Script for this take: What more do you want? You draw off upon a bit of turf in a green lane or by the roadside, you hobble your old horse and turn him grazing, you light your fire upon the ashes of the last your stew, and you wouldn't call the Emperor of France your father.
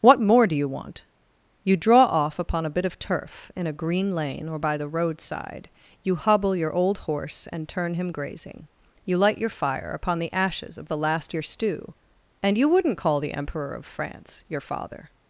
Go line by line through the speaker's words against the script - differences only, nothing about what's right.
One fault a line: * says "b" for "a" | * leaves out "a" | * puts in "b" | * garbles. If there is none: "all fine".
all fine